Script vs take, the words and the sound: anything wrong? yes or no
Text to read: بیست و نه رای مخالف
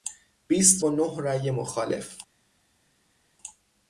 no